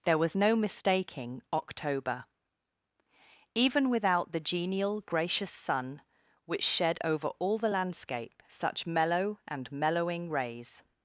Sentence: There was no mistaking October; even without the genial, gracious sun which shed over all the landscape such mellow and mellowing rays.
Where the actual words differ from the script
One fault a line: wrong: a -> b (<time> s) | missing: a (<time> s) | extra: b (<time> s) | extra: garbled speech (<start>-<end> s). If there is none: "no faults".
no faults